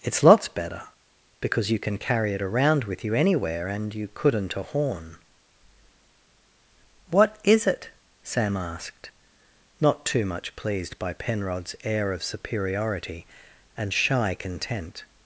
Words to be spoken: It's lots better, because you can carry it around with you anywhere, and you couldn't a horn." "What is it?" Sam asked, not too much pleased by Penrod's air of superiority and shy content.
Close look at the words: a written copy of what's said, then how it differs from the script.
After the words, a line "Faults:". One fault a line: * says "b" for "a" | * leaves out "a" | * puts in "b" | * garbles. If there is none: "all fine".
It's lots better, because you can carry it around with you anywhere, and you couldn't a horn." "What is it?" Sam asked, not too much pleased by Penrod's air of superiority and shy content.
Faults:
all fine